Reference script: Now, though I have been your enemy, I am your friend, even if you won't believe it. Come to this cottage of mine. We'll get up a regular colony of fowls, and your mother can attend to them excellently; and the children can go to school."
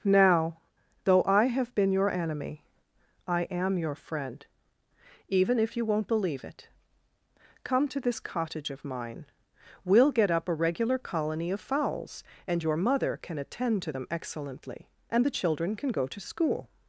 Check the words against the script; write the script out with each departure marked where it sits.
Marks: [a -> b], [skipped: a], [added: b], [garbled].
Now, though I have been your enemy, I am your friend, even if you won't believe it. Come to this cottage of mine. We'll get up a regular colony of fowls, and your mother can attend to them excellently; and the children can go to school."